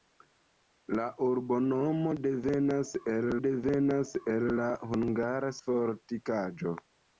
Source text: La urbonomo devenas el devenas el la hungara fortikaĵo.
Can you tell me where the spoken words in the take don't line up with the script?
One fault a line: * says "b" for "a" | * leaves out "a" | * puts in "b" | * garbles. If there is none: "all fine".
all fine